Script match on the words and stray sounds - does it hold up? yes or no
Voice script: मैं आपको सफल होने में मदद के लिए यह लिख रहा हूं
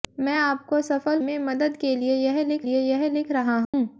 no